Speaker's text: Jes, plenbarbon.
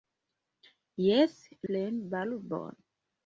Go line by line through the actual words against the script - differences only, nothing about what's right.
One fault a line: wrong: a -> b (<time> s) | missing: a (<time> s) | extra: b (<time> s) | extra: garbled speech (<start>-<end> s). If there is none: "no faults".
no faults